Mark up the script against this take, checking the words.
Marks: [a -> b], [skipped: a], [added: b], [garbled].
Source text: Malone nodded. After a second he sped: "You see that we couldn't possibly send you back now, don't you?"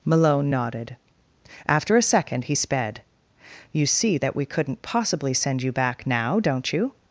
Malone nodded. After a second he sped: "You see that we couldn't possibly send you back now, don't you?"